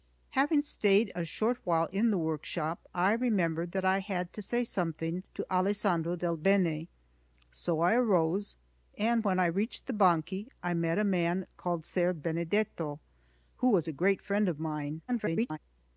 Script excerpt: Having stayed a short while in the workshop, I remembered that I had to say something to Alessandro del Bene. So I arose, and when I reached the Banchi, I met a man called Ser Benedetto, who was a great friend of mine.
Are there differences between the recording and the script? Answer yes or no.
yes